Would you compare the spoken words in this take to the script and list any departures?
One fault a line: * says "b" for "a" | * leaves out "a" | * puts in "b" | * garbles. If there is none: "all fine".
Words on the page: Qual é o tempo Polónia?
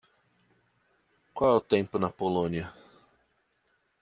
* puts in "na"